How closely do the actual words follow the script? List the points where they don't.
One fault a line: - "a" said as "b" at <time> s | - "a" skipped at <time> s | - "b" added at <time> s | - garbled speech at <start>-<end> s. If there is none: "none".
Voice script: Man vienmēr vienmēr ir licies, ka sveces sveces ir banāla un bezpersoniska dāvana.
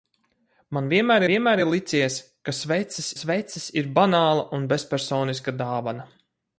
none